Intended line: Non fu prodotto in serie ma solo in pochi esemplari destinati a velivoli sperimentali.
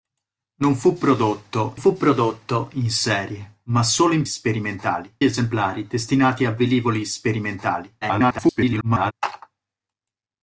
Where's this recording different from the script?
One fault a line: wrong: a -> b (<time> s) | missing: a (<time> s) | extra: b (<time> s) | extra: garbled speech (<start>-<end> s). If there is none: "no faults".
extra: fu prodotto (1.7 s)
wrong: pochi -> sperimentali (4.3 s)
extra: garbled speech (8.0-9.1 s)